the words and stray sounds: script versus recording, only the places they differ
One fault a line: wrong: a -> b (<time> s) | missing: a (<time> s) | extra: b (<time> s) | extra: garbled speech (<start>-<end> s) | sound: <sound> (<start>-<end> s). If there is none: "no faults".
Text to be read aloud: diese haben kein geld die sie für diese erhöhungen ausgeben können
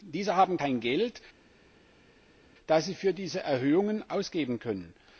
wrong: die -> das (2.7 s)